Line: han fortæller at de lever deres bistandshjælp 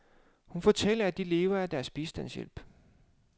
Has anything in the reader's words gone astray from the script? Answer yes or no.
yes